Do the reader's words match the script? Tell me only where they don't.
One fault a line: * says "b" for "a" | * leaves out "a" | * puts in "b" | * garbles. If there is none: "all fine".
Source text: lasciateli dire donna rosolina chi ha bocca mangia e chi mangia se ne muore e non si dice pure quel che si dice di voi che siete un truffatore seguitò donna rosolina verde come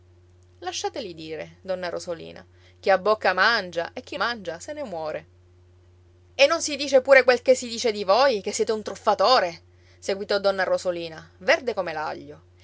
all fine